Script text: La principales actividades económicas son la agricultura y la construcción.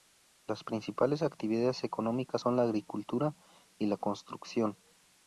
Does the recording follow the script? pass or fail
fail